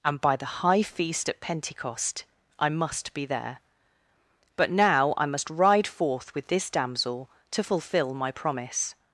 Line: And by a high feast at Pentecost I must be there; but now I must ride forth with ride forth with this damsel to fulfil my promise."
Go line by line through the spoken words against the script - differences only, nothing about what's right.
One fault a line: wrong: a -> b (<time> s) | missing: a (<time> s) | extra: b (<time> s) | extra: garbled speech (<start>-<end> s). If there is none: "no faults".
wrong: a -> the (0.3 s)
missing: ride forth with (6.5 s)